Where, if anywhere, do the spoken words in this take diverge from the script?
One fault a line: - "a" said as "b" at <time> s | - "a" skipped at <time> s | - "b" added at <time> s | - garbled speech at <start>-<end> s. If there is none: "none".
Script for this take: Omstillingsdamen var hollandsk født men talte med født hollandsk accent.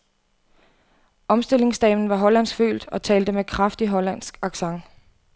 - "men" said as "og" at 2.9 s
- "født" said as "kraftig" at 3.4 s